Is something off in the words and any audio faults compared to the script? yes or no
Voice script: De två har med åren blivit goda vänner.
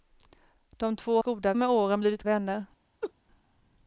yes